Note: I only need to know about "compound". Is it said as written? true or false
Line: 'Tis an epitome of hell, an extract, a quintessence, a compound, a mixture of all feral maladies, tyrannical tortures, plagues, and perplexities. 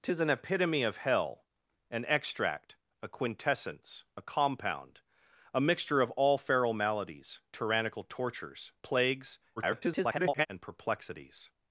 true